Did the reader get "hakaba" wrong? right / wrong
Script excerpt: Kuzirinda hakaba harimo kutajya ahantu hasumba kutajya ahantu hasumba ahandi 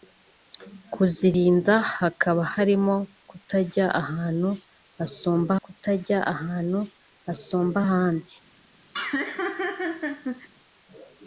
right